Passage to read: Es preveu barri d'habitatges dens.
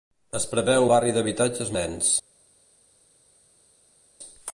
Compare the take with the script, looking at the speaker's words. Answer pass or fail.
pass